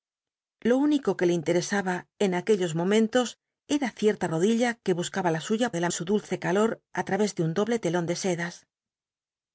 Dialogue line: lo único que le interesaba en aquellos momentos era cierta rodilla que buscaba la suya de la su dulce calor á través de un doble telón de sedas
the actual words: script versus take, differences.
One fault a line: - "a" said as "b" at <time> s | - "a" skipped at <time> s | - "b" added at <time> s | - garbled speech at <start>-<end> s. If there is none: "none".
none